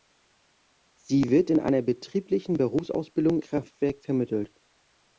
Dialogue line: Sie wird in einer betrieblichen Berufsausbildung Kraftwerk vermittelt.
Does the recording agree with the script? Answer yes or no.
yes